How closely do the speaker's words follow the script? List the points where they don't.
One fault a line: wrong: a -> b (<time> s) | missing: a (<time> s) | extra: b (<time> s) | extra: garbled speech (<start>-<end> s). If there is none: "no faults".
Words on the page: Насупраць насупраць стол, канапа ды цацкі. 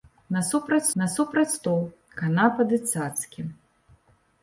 no faults